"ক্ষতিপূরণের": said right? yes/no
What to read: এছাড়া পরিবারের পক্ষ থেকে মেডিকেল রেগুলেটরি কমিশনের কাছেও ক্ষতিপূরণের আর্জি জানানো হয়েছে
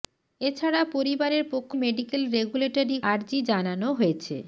no